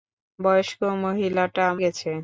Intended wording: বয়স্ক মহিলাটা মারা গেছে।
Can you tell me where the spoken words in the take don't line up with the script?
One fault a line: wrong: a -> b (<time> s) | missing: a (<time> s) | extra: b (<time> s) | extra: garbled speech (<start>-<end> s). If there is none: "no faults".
missing: মারা (1.6 s)